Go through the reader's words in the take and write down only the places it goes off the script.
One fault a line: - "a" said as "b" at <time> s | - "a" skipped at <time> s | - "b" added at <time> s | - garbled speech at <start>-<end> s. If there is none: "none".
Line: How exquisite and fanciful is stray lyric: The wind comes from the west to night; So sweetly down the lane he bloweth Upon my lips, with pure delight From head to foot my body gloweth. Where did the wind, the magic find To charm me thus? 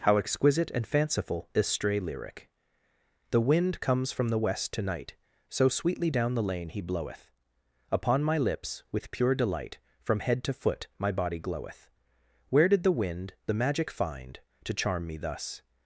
none